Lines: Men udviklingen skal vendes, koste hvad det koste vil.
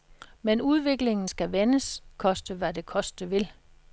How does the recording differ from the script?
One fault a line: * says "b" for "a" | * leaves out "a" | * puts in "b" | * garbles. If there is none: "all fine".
all fine